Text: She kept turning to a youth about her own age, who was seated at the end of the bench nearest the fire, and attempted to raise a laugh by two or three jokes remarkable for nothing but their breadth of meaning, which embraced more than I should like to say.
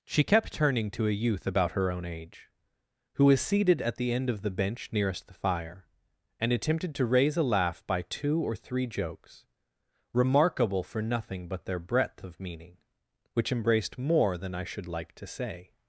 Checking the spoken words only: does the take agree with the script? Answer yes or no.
yes